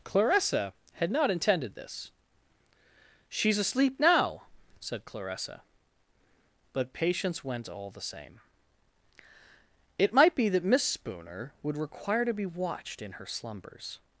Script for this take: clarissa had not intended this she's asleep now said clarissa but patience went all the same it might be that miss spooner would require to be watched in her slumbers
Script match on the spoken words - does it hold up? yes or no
yes